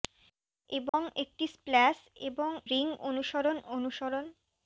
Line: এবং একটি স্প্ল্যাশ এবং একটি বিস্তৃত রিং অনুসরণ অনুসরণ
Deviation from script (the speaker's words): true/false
true